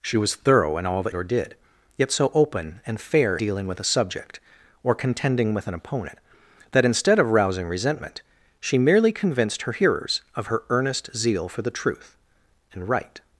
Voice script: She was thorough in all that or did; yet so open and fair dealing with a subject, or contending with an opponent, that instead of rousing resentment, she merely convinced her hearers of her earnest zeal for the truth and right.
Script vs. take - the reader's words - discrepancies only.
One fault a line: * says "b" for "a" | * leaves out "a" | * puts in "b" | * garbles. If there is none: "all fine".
all fine